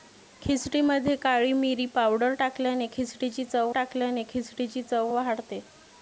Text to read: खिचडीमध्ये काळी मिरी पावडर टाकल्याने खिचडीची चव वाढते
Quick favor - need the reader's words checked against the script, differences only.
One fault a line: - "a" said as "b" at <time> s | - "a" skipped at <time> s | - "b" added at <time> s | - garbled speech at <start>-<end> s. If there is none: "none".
- "टाकल्याने खिचडीची चव" added at 3.7 s